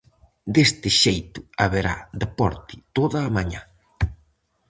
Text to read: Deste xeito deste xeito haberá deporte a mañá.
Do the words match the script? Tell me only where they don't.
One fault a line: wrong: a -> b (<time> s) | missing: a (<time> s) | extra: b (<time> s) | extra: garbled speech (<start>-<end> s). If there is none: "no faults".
missing: deste xeito (1.4 s)
extra: toda (3.0 s)